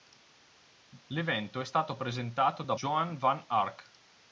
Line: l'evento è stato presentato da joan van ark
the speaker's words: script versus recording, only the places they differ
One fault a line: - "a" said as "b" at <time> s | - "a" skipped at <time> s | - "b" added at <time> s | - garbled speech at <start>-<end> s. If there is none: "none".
none